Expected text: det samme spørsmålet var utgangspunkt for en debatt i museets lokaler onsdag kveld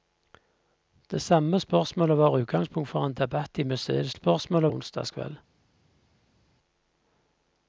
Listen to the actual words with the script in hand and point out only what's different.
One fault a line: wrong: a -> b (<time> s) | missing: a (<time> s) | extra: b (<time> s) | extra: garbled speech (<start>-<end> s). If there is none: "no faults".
wrong: lokaler -> spørsmålet (4.1 s)